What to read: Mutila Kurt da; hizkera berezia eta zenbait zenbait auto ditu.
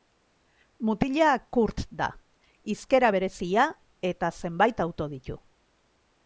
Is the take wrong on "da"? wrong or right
right